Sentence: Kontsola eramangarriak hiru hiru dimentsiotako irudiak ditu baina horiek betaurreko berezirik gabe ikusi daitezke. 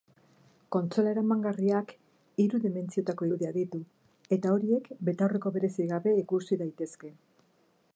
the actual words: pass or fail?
fail